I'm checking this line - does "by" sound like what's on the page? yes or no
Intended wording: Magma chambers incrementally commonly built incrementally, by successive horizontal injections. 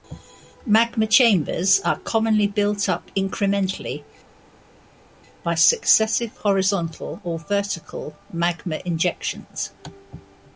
yes